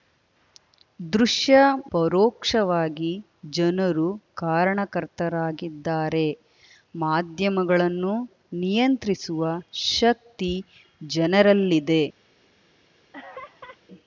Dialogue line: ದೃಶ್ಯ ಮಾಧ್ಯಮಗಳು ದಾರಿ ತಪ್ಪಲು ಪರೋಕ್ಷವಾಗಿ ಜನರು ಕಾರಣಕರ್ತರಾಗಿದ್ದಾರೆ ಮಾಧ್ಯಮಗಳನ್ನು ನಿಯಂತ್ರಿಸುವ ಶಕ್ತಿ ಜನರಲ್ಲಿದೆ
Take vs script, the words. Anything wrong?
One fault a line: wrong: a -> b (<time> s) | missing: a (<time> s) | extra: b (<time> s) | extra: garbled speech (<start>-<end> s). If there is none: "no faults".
missing: ಮಾಧ್ಯಮಗಳು ದಾರಿ ತಪ್ಪಲು (1.6 s)